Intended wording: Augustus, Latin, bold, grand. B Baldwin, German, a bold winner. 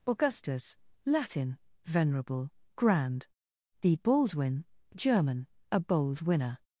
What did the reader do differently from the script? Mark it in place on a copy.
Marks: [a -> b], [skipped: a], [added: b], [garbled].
Augustus, Latin, [bold, -> venerable] grand. B Baldwin, German, a bold winner.